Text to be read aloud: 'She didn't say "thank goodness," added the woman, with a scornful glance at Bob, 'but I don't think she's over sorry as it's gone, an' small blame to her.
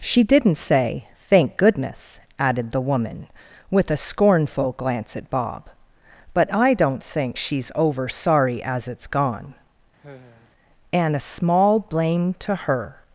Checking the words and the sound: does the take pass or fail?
fail